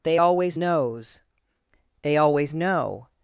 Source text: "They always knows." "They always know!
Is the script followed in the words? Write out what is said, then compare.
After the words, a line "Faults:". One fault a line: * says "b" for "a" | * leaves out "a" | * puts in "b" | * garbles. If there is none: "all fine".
"They always knows." "They always know!
Faults:
all fine